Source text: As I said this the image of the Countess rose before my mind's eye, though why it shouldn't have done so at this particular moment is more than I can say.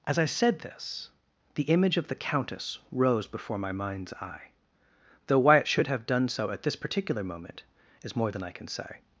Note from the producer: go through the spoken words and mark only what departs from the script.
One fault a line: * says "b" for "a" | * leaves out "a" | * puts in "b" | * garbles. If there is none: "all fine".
* says "should" for "shouldn't"